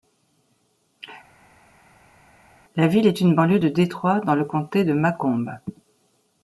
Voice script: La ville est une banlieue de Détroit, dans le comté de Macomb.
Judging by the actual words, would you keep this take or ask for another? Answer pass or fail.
pass